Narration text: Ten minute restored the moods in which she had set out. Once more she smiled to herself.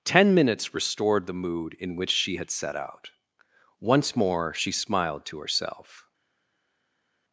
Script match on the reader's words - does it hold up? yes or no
no